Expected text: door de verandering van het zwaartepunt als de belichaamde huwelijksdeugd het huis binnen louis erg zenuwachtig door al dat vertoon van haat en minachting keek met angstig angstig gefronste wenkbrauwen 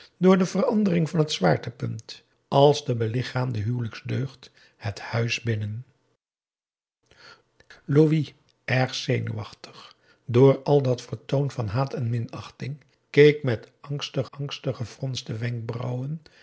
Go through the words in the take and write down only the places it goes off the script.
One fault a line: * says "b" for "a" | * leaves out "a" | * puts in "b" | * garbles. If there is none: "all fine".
all fine